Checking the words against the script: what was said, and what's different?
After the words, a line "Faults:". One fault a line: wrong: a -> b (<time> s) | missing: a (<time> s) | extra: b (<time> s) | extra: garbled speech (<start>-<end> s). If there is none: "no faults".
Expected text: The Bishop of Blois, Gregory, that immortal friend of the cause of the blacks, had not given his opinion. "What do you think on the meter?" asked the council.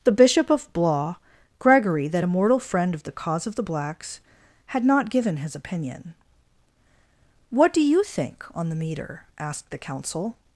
The Bishop of Blois, Gregory, that immortal friend of the cause of the blacks, had not given his opinion. "What do you think on the meter?" asked the council.
Faults:
no faults